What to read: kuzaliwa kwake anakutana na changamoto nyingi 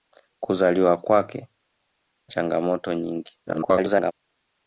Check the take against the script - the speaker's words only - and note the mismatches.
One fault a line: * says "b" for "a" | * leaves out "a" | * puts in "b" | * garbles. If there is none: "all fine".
* leaves out "anakutana na"
* garbles